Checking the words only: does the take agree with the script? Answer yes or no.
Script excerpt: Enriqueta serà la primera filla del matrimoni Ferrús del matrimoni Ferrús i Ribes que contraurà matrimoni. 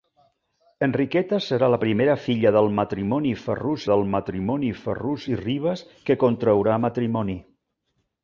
yes